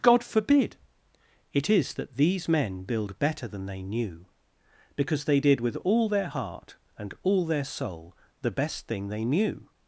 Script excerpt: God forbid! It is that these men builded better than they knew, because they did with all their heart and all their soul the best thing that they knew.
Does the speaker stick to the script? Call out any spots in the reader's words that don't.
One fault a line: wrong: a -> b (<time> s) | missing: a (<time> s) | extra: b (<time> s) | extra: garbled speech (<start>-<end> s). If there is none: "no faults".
wrong: builded -> build (2.8 s)
missing: that (9.1 s)